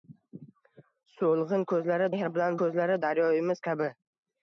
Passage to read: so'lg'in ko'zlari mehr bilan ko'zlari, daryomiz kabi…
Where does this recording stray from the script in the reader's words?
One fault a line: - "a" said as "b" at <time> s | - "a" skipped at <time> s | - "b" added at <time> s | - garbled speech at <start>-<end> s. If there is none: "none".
none